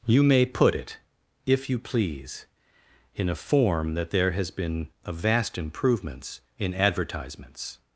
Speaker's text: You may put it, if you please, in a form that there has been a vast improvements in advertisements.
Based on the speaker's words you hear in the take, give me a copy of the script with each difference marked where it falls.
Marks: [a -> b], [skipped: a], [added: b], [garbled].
You may put it, if you please, in a form that there has been a vast improvements in advertisements.